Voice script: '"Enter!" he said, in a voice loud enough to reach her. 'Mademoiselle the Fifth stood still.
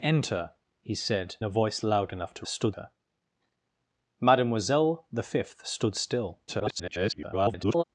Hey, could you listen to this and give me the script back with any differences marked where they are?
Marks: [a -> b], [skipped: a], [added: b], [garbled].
'"Enter!" he said, [skipped: in] a voice loud enough to [reach -> stood] her. 'Mademoiselle the Fifth stood still. [garbled]